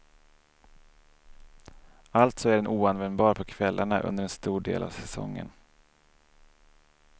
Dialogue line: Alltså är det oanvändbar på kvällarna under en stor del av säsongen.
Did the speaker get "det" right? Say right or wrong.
wrong